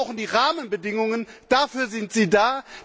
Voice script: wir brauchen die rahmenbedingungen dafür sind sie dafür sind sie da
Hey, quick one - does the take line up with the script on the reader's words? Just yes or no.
no